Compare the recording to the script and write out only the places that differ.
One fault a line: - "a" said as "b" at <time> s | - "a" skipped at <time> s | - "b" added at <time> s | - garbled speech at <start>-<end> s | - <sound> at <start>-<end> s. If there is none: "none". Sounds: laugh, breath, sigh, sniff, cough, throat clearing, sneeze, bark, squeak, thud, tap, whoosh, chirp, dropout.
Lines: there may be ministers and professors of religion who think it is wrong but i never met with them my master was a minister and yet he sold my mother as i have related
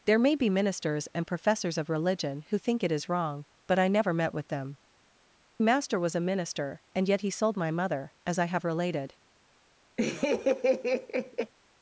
- "my" skipped at 4.8 s
- laugh at 10.0-11.5 s